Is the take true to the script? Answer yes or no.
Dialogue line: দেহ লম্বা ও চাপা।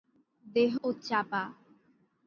no